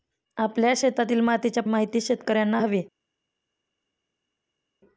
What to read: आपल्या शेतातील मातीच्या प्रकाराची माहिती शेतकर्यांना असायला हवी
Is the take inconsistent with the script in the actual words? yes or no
yes